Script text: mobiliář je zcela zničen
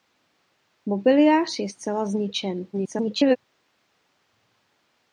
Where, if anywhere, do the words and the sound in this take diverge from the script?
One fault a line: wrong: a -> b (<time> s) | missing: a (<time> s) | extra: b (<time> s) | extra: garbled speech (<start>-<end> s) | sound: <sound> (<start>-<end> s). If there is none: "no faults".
extra: garbled speech (2.7-3.4 s)